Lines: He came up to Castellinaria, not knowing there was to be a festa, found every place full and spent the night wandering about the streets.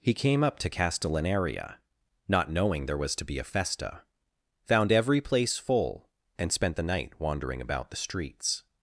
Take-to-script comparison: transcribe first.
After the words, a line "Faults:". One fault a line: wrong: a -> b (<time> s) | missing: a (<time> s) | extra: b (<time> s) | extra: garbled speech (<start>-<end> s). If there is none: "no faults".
He came up to Castellinaria, not knowing there was to be a festa, found every place full and spent the night wandering about the streets.
Faults:
no faults